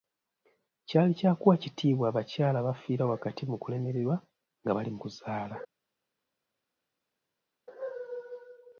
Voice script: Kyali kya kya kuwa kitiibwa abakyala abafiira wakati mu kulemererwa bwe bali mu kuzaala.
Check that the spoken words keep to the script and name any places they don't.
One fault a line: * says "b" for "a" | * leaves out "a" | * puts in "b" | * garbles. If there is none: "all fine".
* leaves out "kya"
* says "nga" for "bwe"